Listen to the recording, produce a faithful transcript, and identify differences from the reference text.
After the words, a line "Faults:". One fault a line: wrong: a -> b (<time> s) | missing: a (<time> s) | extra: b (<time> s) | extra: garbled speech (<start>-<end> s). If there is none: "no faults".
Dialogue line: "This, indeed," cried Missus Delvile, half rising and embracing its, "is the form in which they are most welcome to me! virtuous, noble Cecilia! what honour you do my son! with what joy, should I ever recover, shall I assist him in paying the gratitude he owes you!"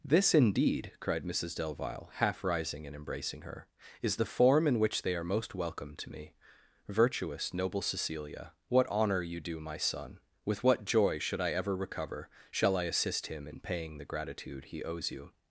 "This, indeed," cried Missus Delvile, half rising and embracing her, "is the form in which they are most welcome to me! virtuous, noble Cecilia! what honour you do my son! with what joy, should I ever recover, shall I assist him in paying the gratitude he owes you!"
Faults:
wrong: its -> her (3.4 s)